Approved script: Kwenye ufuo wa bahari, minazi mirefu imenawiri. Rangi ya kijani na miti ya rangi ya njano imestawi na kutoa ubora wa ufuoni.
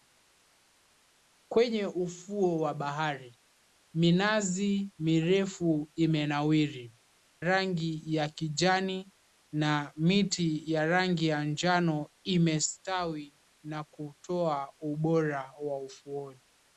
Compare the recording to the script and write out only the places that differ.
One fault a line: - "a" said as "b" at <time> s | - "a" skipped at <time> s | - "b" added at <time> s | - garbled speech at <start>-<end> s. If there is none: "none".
none